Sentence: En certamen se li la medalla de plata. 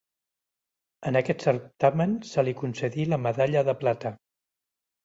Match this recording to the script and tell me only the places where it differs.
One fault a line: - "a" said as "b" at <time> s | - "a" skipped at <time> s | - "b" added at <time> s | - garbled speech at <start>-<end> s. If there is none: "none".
- "aquest" added at 1.2 s
- "concedí" added at 2.6 s